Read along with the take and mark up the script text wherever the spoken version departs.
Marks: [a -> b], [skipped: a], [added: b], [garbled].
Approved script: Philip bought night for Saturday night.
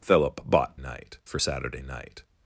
Philip bought night for Saturday night.